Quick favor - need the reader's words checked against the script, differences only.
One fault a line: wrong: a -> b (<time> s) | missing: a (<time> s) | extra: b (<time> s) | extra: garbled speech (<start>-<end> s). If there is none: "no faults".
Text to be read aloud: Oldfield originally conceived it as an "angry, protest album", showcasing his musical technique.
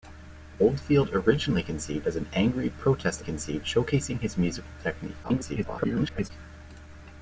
missing: it (2.1 s)
wrong: album -> conceived (3.2 s)
extra: garbled speech (5.2-6.3 s)